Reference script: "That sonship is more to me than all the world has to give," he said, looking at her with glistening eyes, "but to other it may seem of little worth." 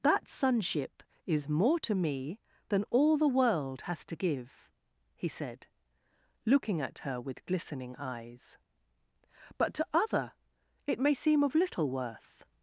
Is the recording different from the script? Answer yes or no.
no